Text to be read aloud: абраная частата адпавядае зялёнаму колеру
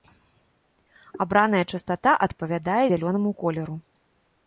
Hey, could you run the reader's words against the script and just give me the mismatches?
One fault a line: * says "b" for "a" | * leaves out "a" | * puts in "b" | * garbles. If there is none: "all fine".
all fine